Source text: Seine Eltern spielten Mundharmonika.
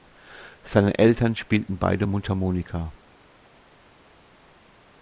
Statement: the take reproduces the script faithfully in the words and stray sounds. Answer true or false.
false